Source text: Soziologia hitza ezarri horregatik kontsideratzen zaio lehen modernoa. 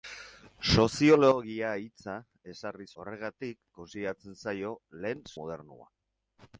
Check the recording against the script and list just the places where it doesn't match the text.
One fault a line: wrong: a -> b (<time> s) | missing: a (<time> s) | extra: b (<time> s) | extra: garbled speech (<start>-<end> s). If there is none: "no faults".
no faults